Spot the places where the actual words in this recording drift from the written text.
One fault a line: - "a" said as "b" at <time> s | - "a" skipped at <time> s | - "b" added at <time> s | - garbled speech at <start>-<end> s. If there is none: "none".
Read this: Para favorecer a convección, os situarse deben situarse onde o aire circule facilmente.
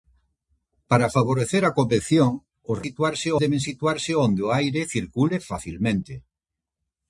none